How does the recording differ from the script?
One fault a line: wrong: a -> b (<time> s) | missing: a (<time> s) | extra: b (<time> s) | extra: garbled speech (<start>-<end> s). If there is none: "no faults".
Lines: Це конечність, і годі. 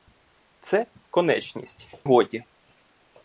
missing: і (1.9 s)